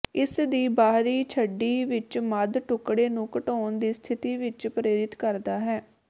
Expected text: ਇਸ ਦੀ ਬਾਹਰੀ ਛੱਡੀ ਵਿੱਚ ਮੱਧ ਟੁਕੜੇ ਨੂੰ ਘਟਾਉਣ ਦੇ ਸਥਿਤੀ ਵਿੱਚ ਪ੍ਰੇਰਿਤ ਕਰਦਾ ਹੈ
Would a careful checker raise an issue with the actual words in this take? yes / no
yes